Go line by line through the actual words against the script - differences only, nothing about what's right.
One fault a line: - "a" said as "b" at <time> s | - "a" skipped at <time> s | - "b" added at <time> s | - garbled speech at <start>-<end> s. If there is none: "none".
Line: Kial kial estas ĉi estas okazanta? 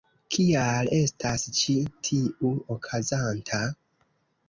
- "kial" skipped at 0.9 s
- "estas" said as "tiu" at 2.1 s